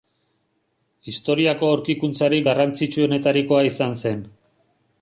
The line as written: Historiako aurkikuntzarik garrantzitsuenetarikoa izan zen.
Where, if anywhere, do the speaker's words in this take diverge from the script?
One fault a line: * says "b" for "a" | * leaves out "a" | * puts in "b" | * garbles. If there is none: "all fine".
all fine